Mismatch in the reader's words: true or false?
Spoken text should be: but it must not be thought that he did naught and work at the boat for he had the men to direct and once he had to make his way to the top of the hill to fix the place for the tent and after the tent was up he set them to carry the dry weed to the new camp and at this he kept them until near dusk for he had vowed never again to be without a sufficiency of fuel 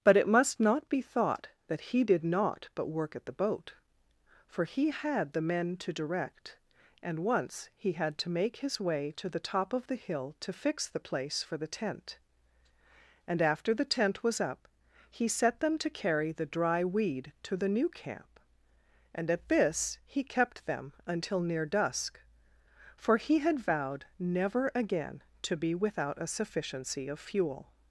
true